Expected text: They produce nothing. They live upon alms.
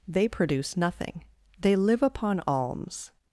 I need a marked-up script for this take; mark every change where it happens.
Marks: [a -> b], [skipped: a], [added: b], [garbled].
They produce nothing. They live upon alms.